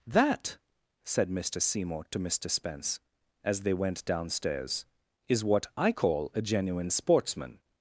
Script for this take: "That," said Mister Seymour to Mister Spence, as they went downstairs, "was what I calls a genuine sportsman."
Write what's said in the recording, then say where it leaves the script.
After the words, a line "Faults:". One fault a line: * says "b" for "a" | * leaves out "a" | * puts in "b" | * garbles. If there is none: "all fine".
"That," said Mister Seymour to Mister Spence, as they went downstairs, "is what I call a genuine sportsman."
Faults:
* says "is" for "was"
* says "call" for "calls"